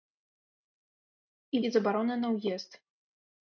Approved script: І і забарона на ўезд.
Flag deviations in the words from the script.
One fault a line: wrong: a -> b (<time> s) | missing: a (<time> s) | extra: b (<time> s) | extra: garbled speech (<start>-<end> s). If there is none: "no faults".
no faults